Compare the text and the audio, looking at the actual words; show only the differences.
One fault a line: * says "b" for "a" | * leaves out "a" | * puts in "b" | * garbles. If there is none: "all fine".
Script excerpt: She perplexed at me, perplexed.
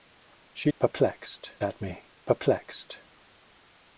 all fine